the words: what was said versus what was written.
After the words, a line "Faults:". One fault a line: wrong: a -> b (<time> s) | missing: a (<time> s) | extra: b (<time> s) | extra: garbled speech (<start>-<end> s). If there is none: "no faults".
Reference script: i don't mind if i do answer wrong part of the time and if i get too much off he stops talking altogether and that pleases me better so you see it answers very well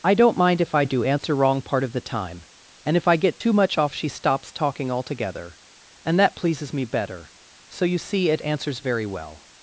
i don't mind if i do answer wrong part of the time and if i get too much off she stops talking altogether and that pleases me better so you see it answers very well
Faults:
wrong: he -> she (3.9 s)